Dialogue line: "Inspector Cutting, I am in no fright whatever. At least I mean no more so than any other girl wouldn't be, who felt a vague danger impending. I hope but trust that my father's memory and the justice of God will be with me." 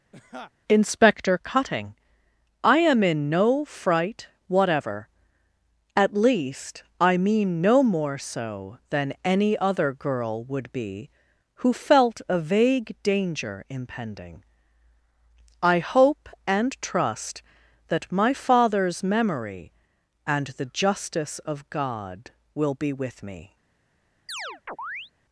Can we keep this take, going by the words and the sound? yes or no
no